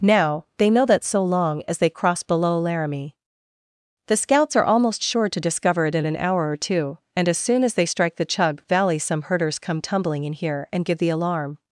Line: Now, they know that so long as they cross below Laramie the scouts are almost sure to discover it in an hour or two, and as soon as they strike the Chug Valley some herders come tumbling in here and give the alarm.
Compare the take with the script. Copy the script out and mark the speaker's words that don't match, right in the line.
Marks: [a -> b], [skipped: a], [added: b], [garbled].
Now, they know that so long as they cross below Laramie the scouts are almost sure to discover it in an hour or two, and as soon as they strike the Chug Valley some herders come tumbling in here and give the alarm.